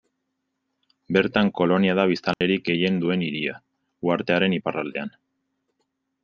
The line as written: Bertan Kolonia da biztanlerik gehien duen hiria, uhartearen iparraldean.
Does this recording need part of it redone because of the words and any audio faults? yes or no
yes